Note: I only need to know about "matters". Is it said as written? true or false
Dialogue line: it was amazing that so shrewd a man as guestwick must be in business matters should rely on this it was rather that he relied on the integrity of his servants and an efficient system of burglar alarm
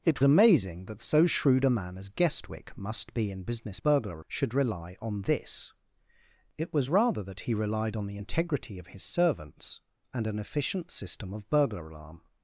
false